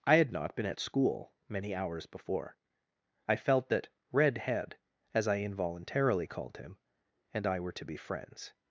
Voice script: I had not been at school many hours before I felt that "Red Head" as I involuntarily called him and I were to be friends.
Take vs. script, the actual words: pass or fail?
pass